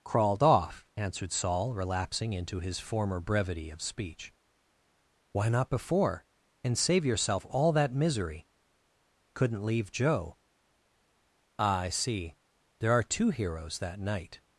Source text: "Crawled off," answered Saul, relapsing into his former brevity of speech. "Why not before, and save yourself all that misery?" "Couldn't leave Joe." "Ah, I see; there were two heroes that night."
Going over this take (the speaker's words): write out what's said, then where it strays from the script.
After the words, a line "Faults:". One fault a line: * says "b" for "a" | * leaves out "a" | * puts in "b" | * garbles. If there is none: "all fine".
"Crawled off," answered Saul, relapsing into his former brevity of speech. "Why not before, and save yourself all that misery?" "Couldn't leave Joe." "Ah, I see; there are two heroes that night."
Faults:
* says "are" for "were"